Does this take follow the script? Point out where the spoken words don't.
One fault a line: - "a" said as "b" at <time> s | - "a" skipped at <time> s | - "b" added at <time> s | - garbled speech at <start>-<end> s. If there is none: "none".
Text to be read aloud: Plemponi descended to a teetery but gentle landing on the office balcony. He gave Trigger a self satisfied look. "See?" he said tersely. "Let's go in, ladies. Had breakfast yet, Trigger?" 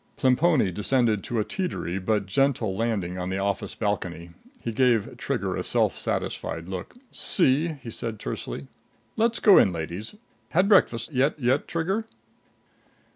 - "yet" added at 11.4 s